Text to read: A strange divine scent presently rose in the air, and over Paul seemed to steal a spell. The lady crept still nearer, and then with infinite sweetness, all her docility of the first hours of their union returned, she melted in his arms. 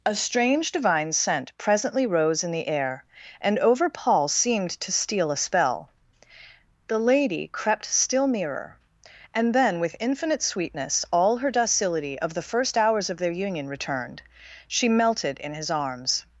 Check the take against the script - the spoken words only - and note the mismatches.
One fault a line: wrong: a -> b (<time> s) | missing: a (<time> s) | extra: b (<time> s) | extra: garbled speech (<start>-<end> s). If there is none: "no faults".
no faults